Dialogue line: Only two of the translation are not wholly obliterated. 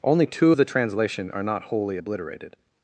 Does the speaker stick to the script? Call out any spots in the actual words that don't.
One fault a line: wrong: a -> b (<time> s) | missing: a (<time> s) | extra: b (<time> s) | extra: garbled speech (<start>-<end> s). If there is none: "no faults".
no faults